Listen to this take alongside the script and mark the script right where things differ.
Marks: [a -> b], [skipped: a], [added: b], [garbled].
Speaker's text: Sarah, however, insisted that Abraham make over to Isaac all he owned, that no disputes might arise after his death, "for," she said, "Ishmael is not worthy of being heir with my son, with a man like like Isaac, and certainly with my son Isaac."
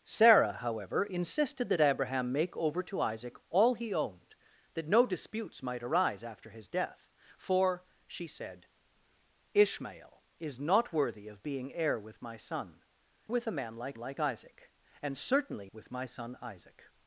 Sarah, however, insisted that Abraham make over to Isaac all he owned, that no disputes might arise after his death, "for," she said, "Ishmael is not worthy of being heir with my son, with a man like like Isaac, and certainly with my son Isaac."